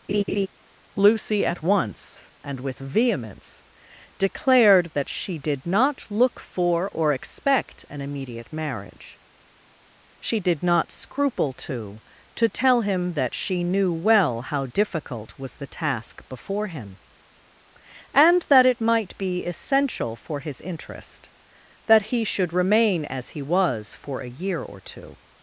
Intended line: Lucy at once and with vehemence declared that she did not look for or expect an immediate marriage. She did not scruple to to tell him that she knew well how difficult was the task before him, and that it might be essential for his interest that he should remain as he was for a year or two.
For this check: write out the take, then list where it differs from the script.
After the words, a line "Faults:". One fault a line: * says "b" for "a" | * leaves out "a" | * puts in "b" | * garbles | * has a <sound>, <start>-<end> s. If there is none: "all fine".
Lucy at once and with vehemence declared that she did not look for or expect an immediate marriage. She did not scruple to to tell him that she knew well how difficult was the task before him, and that it might be essential for his interest that he should remain as he was for a year or two.
Faults:
* has a laugh, 0.1-0.5 s